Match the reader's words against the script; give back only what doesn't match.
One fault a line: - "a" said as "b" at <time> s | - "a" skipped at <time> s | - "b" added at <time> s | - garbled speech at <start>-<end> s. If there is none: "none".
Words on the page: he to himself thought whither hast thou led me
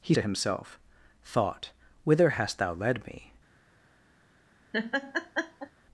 none